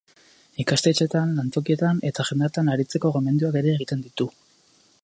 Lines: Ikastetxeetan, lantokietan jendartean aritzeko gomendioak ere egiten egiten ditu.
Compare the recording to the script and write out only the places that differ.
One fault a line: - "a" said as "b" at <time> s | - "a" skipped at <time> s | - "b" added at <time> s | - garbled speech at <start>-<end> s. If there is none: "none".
- "eta" added at 2.1 s
- "egiten" skipped at 4.1 s